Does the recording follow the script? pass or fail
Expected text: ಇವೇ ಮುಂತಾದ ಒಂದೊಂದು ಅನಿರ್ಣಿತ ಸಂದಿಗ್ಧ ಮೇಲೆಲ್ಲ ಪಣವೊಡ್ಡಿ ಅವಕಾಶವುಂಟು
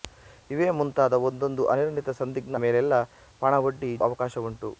pass